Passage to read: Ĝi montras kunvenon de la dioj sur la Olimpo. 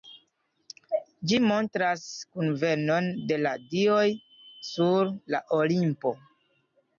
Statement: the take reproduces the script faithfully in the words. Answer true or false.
true